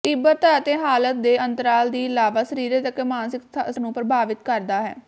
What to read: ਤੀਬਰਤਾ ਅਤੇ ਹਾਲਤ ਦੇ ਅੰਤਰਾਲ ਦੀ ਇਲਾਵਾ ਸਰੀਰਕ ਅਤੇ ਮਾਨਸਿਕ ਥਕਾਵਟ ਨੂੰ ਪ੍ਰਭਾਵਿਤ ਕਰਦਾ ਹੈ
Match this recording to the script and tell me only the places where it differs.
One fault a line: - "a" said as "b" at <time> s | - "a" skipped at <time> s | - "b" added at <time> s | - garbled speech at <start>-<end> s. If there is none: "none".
- "ਥਕਾਵਟ" skipped at 3.4 s